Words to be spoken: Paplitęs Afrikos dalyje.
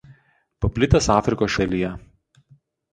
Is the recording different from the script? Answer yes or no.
no